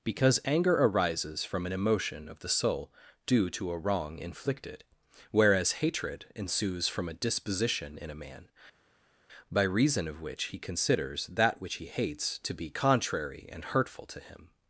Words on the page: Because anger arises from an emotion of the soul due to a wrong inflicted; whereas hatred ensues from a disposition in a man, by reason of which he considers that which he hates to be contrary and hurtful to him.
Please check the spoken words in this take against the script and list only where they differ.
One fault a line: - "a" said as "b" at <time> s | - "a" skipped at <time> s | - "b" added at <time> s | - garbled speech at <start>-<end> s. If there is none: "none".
none